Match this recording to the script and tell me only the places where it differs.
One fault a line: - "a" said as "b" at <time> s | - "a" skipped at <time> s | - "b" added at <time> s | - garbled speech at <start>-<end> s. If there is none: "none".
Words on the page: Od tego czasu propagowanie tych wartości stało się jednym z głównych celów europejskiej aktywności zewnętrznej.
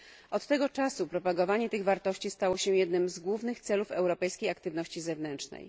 none